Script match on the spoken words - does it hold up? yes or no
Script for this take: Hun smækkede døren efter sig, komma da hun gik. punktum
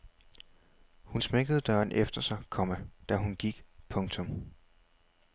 yes